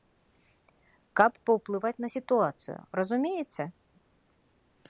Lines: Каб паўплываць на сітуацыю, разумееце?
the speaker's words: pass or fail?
pass